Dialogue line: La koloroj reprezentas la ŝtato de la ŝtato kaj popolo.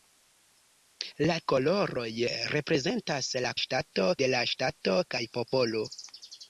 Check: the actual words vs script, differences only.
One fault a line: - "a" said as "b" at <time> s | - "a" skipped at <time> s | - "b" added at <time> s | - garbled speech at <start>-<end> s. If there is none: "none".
none